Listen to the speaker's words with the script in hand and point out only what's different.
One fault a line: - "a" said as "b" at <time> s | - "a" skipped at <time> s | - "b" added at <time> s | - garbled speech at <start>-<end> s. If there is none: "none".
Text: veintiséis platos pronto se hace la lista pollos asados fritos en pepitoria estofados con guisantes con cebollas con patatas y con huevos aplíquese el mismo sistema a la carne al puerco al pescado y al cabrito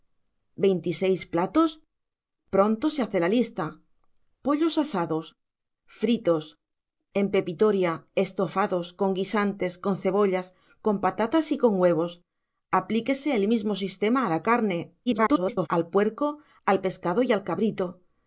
- garbled speech at 15.1-15.7 s